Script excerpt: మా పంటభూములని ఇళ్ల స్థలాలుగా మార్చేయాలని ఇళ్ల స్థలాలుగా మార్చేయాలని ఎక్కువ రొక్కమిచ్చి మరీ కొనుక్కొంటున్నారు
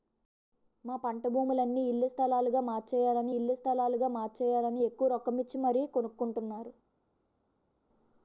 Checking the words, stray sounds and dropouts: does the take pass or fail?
pass